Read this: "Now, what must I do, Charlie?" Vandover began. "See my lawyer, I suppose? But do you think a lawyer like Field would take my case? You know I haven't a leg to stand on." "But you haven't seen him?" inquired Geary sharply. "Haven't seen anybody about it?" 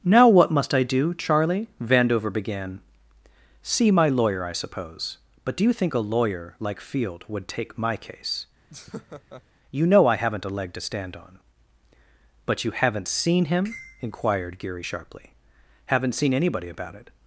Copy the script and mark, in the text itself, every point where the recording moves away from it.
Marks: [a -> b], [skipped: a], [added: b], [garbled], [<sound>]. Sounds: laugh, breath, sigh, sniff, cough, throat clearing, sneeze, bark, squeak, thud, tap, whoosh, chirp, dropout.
"Now, what must I do, Charlie?" Vandover began. "See my lawyer, I suppose? But do you think a lawyer like Field would take my case? [laugh] You know I haven't a leg to stand on." "But you haven't seen him?" inquired Geary sharply. "Haven't seen anybody about it?"